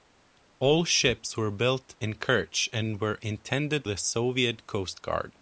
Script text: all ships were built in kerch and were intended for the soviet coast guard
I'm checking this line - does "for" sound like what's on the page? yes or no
no